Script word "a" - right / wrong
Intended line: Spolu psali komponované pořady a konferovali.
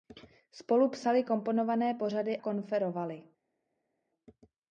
wrong